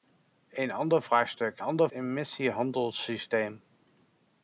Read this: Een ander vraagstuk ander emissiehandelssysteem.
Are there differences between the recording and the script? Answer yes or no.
no